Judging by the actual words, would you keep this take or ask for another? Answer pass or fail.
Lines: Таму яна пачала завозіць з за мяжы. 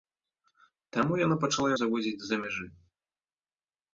pass